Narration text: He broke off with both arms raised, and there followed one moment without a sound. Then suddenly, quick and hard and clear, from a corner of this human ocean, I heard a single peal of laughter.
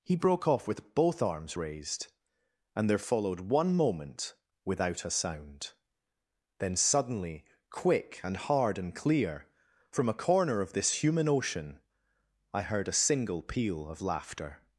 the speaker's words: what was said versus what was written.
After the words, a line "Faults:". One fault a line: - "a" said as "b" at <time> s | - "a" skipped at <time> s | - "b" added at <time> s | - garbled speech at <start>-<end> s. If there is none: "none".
He broke off with both arms raised, and there followed one moment without a sound. Then suddenly, quick and hard and clear, from a corner of this human ocean, I heard a single peal of laughter.
Faults:
none